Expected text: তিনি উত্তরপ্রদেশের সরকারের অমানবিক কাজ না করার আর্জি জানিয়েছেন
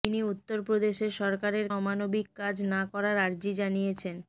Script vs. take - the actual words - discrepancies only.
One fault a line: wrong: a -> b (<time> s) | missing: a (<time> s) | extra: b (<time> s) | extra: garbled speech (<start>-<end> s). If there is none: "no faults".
no faults